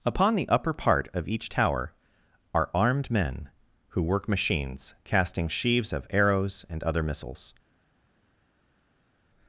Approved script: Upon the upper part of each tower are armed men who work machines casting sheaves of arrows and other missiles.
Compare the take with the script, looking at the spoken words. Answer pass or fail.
pass